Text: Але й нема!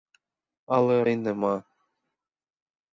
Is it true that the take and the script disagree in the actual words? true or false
false